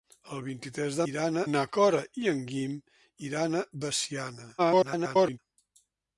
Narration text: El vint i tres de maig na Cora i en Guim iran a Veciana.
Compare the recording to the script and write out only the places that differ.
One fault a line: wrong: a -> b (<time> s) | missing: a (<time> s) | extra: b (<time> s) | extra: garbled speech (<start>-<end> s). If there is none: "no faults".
wrong: maig -> iran (1.1 s)
extra: garbled speech (4.6-5.4 s)